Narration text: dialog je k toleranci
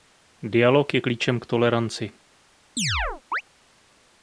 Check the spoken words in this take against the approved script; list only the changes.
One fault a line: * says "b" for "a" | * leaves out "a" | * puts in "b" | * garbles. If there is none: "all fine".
* puts in "klíčem"